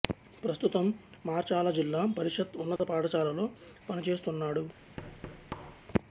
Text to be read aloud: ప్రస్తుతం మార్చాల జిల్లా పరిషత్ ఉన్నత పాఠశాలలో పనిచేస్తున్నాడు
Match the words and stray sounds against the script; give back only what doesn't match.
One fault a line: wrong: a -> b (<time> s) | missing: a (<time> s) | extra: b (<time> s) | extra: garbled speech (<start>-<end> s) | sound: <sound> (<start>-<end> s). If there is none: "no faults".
sound: dropout (2.8-2.8 s)
sound: thud (5.0-5.9 s)